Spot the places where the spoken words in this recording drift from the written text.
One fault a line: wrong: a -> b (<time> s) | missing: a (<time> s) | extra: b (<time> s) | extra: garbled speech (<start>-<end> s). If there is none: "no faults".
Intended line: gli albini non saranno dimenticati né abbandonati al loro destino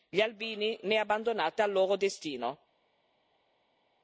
missing: non saranno dimenticati (0.8 s)